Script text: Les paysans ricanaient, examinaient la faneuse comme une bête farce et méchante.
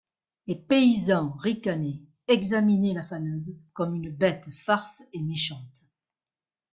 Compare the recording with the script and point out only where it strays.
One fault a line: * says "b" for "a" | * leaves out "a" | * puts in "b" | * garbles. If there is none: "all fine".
all fine